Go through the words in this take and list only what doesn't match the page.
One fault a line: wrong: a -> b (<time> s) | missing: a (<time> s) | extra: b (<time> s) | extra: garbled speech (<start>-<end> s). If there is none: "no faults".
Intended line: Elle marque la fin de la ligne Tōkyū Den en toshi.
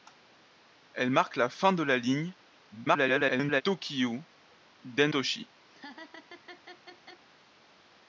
extra: garbled speech (2.7-3.6 s)
missing: en (5.1 s)